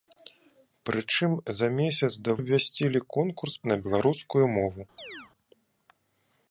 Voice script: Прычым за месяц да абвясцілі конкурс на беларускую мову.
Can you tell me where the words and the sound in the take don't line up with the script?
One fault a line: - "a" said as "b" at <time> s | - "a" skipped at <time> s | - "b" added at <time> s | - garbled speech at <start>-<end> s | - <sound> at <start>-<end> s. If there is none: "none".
- chirp at 5.0-5.3 s